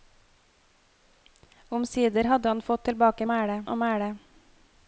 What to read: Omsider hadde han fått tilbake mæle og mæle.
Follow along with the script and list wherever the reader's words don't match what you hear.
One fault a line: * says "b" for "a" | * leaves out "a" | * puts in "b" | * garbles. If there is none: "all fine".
all fine